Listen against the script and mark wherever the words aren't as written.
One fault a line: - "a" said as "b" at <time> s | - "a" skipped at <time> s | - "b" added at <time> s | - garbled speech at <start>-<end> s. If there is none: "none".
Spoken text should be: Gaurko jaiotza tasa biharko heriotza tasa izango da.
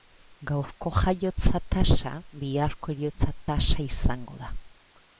none